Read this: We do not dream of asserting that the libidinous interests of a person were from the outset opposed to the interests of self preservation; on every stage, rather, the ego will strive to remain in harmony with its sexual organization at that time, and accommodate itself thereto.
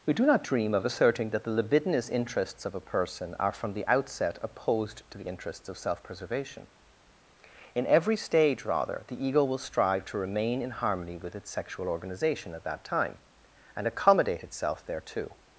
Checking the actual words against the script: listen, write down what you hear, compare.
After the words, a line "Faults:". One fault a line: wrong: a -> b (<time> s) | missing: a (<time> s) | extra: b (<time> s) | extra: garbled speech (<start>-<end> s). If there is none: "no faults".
We do not dream of asserting that the libidinous interests of a person are from the outset opposed to the interests of self preservation; in every stage, rather, the ego will strive to remain in harmony with its sexual organization at that time, and accommodate itself thereto.
Faults:
wrong: were -> are (3.4 s)
wrong: on -> in (7.8 s)